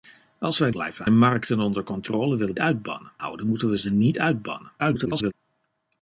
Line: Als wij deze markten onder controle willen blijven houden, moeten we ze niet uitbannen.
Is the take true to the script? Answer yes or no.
no